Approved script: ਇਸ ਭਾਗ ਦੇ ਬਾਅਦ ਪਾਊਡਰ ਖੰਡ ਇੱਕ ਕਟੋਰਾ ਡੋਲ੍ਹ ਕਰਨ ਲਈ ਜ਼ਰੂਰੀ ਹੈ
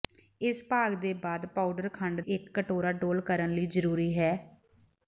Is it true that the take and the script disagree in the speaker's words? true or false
false